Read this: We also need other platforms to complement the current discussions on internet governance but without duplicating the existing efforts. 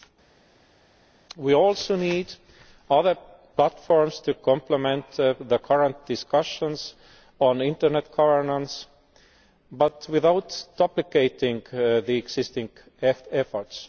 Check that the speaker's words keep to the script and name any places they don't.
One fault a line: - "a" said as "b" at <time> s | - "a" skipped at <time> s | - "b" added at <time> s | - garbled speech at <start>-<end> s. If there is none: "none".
none